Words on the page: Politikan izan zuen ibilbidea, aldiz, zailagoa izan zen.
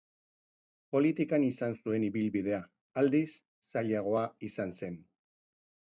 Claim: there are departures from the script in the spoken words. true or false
false